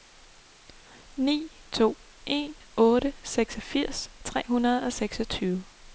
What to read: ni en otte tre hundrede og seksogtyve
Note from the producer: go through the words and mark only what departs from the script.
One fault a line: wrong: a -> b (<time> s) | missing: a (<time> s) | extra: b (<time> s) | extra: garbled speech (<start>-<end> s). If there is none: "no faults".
extra: to (1.7 s)
extra: seksogfirs (3.2 s)